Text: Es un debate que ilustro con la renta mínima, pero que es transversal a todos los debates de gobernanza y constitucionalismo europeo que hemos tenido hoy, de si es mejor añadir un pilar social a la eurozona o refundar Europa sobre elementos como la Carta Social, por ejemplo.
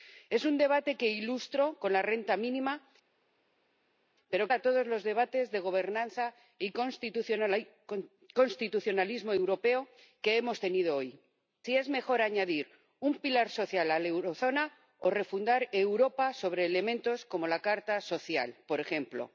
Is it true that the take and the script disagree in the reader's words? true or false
true